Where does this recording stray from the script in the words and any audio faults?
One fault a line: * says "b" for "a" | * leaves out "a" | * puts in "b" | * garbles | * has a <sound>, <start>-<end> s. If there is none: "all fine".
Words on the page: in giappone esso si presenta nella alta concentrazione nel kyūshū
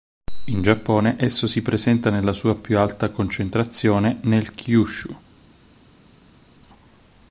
* puts in "sua più"